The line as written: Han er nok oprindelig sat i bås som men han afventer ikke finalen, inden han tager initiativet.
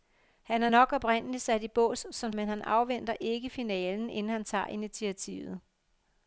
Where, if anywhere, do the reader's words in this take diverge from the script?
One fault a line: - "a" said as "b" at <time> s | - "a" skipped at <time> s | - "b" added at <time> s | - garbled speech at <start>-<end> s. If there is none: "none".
none